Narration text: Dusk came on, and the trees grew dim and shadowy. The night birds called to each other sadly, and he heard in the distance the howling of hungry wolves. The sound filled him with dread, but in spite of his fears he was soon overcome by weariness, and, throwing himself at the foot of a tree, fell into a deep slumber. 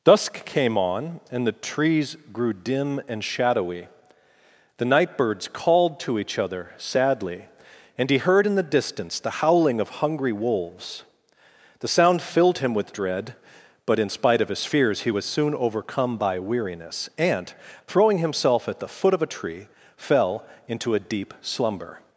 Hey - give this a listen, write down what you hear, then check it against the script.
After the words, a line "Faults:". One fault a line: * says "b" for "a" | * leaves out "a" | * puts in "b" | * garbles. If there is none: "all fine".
Dusk came on, and the trees grew dim and shadowy. The night birds called to each other sadly, and he heard in the distance the howling of hungry wolves. The sound filled him with dread, but in spite of his fears he was soon overcome by weariness, and, throwing himself at the foot of a tree, fell into a deep slumber.
Faults:
all fine